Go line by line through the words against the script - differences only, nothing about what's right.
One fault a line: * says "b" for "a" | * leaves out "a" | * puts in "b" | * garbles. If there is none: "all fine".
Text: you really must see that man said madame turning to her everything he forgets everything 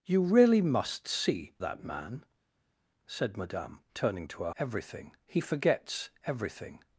all fine